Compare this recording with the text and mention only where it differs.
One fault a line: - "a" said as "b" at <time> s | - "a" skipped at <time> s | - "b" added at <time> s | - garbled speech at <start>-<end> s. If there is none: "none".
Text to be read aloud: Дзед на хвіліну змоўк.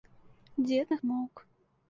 - "хвіліну" skipped at 1.0 s